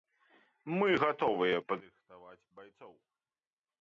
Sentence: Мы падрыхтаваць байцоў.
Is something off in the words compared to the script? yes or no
yes